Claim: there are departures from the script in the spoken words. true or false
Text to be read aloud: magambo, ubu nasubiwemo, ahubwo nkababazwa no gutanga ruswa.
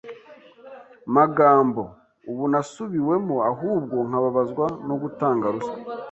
false